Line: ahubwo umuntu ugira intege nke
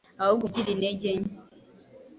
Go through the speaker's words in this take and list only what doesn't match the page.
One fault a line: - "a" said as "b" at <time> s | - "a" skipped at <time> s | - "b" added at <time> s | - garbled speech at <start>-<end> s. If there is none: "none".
- "umuntu" skipped at 0.5 s